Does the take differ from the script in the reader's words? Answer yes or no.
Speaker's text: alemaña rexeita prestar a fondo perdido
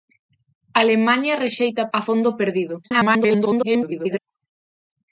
yes